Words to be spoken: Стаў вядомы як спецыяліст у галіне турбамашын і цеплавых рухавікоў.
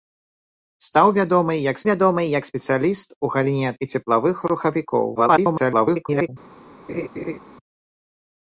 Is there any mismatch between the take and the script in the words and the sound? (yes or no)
yes